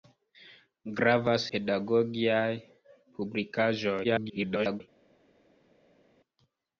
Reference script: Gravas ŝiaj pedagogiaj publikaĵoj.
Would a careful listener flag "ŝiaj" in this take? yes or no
yes